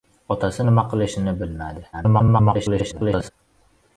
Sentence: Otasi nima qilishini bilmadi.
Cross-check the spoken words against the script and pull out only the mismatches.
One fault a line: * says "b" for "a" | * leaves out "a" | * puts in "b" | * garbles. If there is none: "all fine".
* garbles